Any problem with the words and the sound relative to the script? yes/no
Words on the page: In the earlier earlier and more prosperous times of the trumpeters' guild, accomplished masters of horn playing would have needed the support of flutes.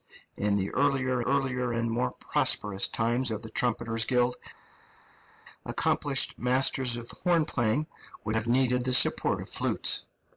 no